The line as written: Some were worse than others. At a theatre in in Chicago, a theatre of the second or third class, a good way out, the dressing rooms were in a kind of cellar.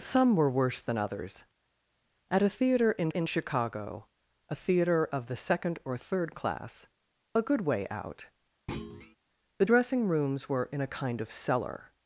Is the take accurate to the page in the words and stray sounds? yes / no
no